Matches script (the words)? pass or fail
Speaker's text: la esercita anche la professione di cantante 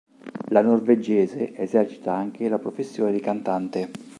fail